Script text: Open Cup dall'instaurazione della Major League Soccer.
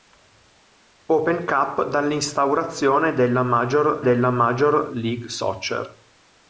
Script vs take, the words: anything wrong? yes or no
yes